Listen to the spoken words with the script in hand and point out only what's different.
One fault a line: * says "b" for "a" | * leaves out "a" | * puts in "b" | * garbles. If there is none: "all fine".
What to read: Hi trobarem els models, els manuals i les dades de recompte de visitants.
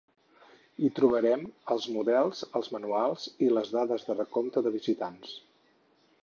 all fine